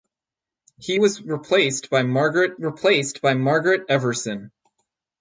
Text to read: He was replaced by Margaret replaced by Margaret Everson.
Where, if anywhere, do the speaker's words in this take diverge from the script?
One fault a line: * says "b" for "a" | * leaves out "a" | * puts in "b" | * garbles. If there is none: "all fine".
all fine